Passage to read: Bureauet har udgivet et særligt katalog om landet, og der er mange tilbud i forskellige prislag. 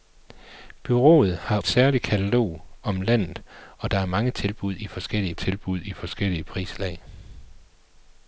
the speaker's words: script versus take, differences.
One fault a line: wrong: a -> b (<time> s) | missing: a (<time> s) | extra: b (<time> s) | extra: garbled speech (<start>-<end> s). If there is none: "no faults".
missing: udgivet (1.6 s)
extra: tilbud i forskellige (5.3 s)